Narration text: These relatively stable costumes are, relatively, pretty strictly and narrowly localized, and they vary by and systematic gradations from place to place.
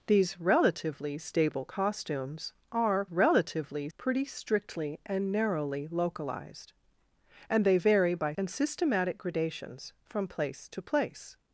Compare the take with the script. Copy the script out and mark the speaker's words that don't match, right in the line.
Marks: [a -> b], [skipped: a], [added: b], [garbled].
These relatively stable costumes are, relatively, pretty strictly and narrowly localized, and they vary by and systematic gradations from place to place.